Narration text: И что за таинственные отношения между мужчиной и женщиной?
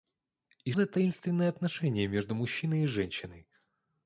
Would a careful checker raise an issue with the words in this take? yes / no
yes